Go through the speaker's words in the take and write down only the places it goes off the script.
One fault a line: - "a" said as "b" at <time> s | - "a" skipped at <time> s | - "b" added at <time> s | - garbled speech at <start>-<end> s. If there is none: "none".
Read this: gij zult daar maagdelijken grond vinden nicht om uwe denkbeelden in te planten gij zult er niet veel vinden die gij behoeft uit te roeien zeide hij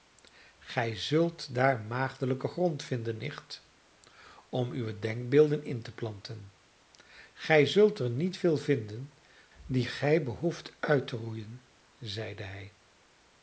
none